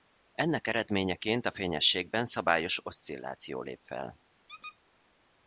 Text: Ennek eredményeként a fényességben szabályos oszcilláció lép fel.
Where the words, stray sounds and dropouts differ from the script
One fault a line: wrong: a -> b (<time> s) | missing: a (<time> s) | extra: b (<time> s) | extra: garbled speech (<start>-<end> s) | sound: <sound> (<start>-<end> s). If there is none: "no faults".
sound: squeak (4.5-4.8 s)